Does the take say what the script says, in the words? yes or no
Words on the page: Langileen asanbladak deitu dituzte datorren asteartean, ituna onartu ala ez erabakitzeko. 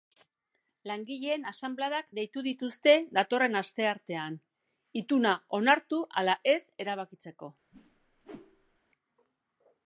yes